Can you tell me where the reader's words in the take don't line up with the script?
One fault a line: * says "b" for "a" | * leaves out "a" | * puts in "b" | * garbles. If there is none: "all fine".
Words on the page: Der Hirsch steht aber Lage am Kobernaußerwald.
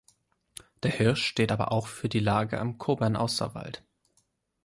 * puts in "auch für die"